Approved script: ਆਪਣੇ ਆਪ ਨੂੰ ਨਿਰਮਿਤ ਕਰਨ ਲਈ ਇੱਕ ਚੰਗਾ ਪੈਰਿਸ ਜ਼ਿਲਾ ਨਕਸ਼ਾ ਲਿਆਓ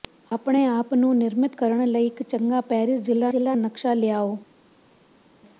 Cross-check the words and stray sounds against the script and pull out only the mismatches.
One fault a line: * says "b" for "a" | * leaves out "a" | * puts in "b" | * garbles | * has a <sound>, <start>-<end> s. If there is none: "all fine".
* puts in "ਜ਼ਿਲਾ"